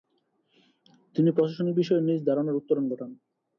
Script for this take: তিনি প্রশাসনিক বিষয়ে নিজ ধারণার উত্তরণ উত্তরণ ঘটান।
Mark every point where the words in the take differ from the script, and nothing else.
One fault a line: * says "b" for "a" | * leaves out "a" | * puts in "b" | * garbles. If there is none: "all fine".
* leaves out "উত্তরণ"